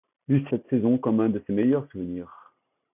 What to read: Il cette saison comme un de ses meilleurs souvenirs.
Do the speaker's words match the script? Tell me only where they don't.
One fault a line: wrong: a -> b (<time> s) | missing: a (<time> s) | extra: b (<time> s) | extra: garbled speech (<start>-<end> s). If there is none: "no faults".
no faults